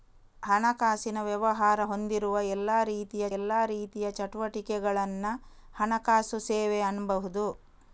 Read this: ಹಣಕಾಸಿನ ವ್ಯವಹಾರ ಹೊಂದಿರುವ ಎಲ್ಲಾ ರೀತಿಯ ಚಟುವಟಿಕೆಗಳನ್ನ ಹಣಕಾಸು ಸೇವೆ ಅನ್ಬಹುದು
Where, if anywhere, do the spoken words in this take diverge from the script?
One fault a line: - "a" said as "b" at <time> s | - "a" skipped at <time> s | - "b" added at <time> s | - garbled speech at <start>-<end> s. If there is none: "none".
- "ಎಲ್ಲಾ ರೀತಿಯ" added at 3.4 s